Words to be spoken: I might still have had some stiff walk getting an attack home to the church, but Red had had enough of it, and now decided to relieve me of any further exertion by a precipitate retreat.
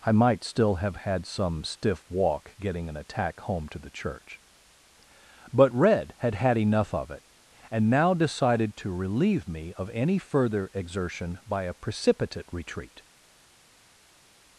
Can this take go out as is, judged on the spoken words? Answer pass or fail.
pass